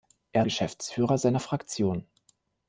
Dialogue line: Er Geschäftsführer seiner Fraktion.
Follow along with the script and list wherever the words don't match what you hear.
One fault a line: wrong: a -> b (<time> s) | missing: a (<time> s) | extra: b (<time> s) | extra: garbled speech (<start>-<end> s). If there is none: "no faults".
no faults